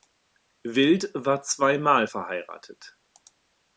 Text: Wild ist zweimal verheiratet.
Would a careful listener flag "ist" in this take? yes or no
yes